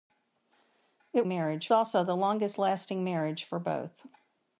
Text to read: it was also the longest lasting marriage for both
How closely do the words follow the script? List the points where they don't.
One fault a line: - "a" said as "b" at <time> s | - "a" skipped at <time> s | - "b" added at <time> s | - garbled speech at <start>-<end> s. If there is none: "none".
- "was" said as "marriage" at 1.3 s